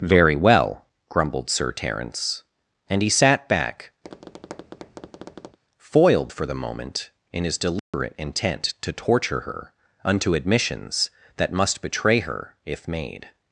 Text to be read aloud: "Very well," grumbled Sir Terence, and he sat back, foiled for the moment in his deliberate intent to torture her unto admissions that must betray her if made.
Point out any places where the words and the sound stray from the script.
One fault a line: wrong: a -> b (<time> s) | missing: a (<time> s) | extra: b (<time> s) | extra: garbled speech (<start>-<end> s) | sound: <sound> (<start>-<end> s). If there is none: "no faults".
sound: tap (4.0-5.6 s)
sound: dropout (7.8-7.9 s)